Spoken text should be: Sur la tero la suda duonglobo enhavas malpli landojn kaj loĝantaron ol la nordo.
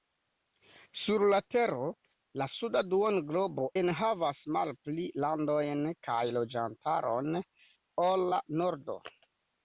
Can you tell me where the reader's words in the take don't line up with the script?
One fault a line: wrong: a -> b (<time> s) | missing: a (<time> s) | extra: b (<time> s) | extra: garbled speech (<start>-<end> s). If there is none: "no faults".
no faults